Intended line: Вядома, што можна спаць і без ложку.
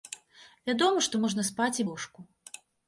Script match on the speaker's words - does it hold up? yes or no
no